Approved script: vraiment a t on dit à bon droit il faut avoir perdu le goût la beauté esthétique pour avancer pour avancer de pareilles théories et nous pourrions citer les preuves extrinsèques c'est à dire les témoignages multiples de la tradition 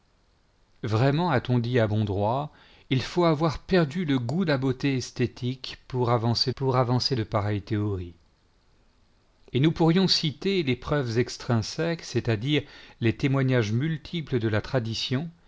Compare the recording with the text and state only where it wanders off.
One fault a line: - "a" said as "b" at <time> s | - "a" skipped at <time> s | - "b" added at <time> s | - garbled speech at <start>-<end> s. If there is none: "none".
none